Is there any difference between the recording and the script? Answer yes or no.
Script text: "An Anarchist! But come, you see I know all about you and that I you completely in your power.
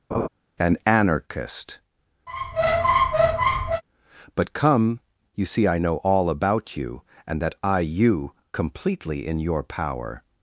no